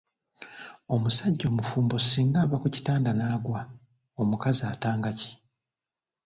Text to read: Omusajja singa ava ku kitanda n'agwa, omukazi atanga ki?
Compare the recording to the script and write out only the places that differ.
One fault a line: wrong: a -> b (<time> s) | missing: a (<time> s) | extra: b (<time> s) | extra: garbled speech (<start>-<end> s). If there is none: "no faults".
extra: omufumbo (1.5 s)